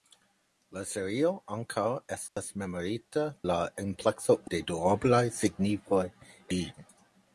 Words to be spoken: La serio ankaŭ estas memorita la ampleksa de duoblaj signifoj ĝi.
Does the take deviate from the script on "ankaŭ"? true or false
false